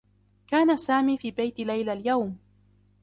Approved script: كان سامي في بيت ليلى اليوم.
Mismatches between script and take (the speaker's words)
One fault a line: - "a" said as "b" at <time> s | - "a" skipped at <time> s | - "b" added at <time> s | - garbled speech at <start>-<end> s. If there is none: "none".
none